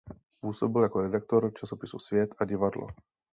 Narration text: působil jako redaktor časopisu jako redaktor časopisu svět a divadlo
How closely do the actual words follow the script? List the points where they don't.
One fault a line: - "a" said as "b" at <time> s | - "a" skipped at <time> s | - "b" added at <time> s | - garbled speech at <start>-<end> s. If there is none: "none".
- "jako redaktor časopisu" skipped at 2.0 s